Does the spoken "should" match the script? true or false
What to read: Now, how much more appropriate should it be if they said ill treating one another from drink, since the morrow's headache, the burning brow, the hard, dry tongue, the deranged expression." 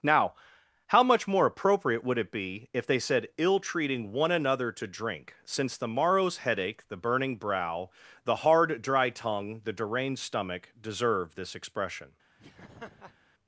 false